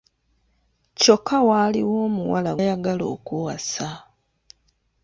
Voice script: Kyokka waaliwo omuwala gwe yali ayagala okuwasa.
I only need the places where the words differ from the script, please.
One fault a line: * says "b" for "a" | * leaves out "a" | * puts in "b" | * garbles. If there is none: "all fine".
* leaves out "gwe yali"